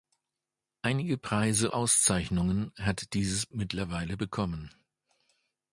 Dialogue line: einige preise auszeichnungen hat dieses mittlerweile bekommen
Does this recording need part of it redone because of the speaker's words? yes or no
no